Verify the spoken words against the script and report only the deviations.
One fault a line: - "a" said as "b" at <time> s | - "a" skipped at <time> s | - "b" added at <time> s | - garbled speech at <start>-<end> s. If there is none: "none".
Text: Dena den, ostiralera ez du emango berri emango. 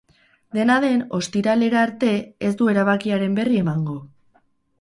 - "arte" added at 1.9 s
- "emango" said as "erabakiaren" at 2.7 s